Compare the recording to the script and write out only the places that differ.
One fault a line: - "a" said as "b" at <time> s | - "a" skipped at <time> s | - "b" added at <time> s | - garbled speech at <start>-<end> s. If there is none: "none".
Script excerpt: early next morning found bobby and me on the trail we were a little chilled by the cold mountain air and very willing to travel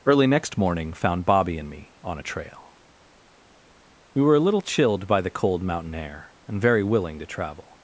- "the" said as "a" at 2.2 s